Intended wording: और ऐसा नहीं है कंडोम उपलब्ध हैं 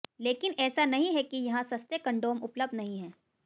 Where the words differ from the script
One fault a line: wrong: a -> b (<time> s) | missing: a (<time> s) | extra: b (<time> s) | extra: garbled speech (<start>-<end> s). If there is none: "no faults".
wrong: और -> लेकिन (0.2 s)
extra: कि यहां सस्ते (1.2 s)
extra: नहीं (2.8 s)